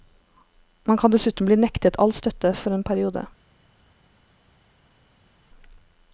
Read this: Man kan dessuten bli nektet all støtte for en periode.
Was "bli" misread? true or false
false